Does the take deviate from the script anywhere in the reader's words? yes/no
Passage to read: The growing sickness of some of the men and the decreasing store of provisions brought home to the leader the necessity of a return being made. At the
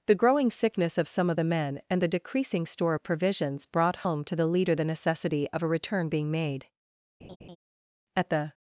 no